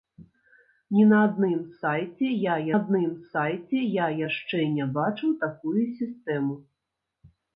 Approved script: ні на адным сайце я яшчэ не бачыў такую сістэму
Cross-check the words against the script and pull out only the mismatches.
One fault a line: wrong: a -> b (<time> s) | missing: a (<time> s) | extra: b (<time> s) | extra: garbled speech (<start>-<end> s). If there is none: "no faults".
extra: адным сайце я (2.8 s)